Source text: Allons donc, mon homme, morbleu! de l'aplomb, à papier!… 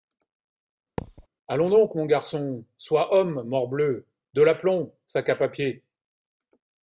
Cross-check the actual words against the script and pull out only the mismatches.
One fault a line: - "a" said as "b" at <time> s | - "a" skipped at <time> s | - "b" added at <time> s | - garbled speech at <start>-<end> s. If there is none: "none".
- "garçon sois" added at 2.1 s
- "sac" added at 5.0 s